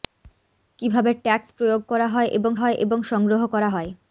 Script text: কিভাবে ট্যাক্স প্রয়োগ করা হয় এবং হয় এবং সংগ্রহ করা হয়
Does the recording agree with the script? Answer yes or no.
yes